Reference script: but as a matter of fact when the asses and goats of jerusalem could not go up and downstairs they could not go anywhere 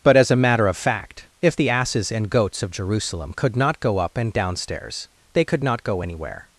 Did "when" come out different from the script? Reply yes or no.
yes